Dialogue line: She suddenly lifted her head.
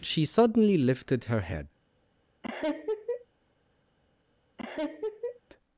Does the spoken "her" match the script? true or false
true